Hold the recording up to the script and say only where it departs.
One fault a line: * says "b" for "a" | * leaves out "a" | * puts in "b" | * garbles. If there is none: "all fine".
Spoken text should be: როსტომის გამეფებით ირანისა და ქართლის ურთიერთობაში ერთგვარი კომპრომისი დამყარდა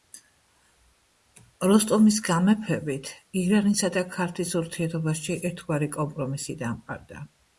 all fine